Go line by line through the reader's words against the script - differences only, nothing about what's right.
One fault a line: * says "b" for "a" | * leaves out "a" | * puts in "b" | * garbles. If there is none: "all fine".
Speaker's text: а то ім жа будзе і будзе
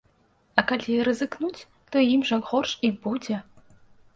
* puts in "калі рызыкнуць"
* says "горш" for "будзе"